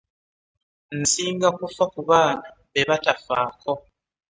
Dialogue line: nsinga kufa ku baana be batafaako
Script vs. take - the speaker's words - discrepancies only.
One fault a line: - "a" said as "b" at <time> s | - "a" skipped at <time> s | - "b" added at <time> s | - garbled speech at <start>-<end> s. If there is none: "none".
none